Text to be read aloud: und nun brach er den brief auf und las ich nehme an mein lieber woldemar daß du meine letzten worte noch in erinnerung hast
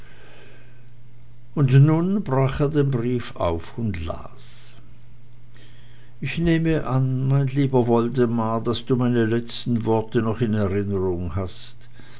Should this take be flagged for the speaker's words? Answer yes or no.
no